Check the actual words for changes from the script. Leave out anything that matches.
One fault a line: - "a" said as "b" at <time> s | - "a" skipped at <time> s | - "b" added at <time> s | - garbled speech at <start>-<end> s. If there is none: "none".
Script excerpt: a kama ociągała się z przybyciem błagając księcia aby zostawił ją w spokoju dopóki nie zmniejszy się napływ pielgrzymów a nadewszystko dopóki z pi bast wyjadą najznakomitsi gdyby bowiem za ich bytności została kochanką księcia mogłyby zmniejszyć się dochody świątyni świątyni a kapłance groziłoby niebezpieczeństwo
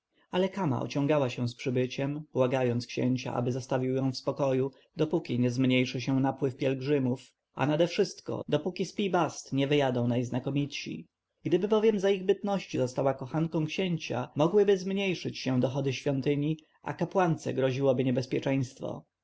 - "a" said as "ale" at 0.3 s
- "nie" added at 9.5 s
- "świątyni" skipped at 16.6 s